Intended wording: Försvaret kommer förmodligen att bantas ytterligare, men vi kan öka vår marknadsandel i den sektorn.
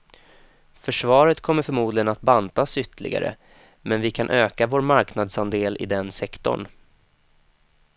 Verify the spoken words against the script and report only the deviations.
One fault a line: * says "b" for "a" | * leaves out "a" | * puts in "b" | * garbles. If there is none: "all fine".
all fine